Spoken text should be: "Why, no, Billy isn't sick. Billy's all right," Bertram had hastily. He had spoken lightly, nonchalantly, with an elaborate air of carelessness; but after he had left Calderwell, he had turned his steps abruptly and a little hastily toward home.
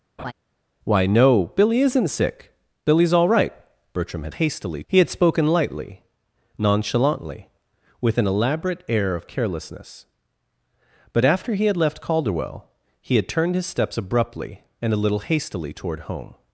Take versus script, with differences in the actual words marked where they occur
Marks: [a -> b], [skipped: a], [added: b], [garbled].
"Why, no, Billy isn't sick. Billy's all right," Bertram had hastily. He had spoken lightly, nonchalantly, with an elaborate air of carelessness; but after he had left Calderwell, he had turned his steps abruptly and a little hastily toward home.